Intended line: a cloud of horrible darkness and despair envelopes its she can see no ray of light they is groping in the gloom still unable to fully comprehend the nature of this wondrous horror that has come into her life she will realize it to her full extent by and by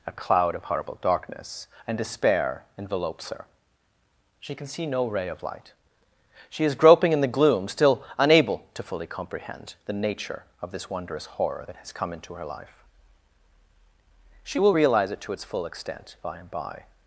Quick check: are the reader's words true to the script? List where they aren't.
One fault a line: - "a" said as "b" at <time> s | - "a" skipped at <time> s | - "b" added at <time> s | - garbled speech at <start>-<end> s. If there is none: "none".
- "its" said as "her" at 3.3 s
- "they" said as "she" at 6.5 s
- "her" said as "its" at 15.3 s